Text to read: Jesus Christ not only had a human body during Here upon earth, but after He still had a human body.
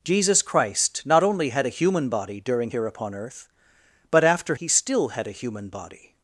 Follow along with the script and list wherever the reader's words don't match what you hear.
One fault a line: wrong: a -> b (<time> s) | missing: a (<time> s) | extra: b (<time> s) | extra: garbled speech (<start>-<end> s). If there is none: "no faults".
no faults